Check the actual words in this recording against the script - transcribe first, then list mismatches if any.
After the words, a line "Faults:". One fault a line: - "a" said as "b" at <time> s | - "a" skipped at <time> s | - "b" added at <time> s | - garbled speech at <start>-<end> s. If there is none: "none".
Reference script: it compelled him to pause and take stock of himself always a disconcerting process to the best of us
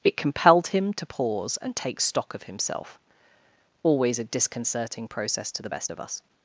it compelled him to pause and take stock of himself always a disconcerting process to the best of us
Faults:
none